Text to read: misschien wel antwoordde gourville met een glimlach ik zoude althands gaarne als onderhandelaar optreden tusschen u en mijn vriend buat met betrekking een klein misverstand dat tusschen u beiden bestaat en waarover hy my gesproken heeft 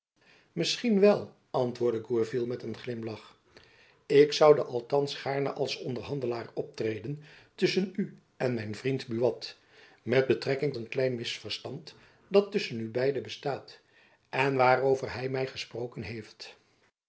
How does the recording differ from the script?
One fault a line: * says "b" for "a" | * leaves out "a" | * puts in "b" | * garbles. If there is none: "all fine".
all fine